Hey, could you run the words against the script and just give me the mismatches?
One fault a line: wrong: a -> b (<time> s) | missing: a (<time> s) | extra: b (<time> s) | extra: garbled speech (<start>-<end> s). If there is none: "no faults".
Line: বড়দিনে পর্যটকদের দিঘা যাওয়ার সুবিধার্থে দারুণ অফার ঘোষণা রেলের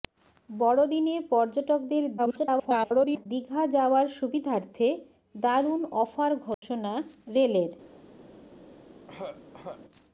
extra: garbled speech (2.2-3.3 s)